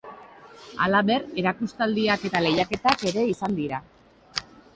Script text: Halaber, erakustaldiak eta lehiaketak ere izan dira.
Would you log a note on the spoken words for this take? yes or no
no